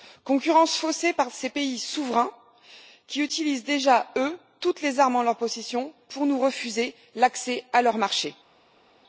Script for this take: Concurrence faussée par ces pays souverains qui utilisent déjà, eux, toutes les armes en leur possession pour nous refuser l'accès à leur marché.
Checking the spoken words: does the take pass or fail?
pass